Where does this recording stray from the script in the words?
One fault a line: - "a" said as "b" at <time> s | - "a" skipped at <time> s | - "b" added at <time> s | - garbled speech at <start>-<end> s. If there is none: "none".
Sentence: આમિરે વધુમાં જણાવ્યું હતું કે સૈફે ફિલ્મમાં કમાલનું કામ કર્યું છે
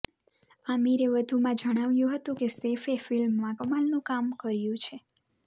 none